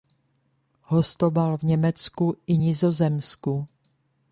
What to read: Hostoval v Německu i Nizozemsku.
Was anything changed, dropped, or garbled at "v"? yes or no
no